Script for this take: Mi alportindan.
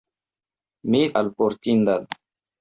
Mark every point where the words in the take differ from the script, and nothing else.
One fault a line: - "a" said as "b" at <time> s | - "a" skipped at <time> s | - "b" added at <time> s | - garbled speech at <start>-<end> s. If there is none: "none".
none